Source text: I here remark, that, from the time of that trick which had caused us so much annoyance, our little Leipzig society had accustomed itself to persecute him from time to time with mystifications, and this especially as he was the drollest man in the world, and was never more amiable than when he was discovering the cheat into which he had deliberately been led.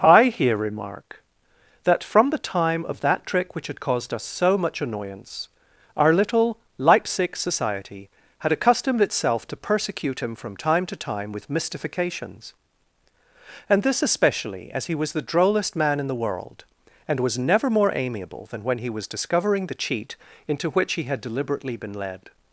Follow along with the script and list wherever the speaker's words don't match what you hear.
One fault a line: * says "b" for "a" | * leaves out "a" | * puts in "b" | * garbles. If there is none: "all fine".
all fine